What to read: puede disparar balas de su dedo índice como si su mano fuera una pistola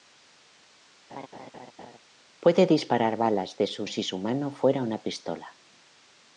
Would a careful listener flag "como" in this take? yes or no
yes